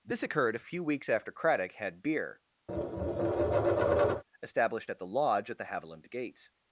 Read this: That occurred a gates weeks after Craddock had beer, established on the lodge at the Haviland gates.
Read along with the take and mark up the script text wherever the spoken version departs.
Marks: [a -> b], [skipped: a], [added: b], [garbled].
[That -> This] occurred a [gates -> few] weeks after Craddock had beer, established [on -> at] the lodge at the Haviland gates.